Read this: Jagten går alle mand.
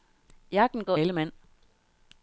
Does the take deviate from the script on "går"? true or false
false